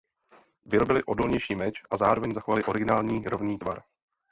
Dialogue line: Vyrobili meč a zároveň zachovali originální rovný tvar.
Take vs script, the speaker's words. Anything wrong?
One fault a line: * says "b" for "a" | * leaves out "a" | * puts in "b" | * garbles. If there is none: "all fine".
* puts in "odolnější"